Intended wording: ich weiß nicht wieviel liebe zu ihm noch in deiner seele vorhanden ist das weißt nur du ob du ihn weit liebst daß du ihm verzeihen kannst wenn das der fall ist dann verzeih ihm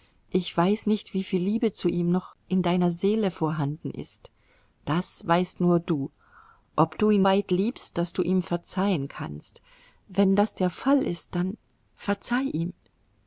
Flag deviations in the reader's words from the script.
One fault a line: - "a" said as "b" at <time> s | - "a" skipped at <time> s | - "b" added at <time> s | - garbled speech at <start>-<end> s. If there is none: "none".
none